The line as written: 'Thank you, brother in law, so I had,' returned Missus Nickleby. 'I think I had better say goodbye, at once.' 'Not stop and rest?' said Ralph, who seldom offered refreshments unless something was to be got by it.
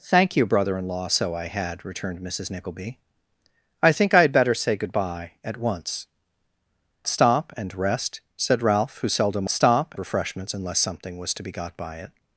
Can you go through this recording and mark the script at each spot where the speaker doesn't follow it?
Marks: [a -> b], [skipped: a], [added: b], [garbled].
'Thank you, brother in law, so I had,' returned Missus Nickleby. 'I think I had better say goodbye, at once.' [skipped: 'Not] stop and rest?' said Ralph, who seldom [offered -> stop] refreshments unless something was to be got by it.